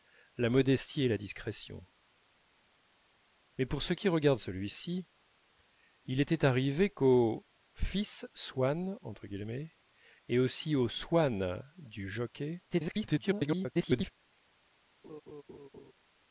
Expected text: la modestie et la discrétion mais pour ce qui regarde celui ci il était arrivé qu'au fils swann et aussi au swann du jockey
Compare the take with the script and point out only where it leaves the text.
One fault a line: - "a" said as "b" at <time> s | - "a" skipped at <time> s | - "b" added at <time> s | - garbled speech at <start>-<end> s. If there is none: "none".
- garbled speech at 12.7-14.1 s